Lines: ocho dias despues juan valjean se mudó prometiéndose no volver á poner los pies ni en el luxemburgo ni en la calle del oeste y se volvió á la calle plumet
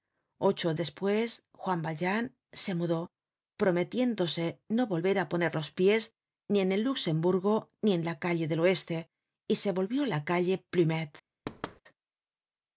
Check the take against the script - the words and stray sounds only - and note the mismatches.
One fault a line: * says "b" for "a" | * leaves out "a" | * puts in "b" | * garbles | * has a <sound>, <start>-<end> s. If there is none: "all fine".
* leaves out "dias"
* has a thud, 11.5-11.8 s